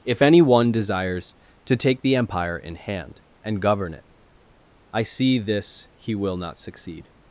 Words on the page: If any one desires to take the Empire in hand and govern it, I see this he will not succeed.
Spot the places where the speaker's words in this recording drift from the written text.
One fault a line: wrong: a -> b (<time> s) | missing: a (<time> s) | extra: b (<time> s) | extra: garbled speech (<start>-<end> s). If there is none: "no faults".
no faults